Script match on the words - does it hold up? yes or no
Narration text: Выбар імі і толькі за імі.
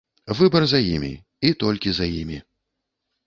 no